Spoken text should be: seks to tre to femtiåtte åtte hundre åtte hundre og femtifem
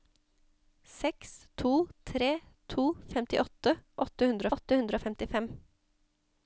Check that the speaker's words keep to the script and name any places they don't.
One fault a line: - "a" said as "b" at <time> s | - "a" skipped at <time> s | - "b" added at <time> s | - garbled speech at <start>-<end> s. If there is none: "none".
none